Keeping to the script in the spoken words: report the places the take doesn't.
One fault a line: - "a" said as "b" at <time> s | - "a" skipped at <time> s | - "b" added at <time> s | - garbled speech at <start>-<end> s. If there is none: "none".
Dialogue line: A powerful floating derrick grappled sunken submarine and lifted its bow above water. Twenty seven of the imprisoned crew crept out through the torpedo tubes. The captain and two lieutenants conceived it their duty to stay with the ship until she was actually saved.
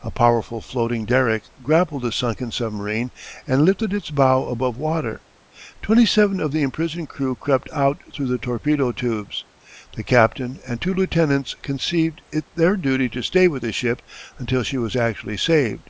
- "the" added at 2.0 s